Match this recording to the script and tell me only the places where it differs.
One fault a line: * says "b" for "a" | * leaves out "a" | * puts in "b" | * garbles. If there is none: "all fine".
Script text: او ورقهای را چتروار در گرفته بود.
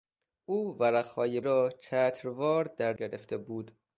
all fine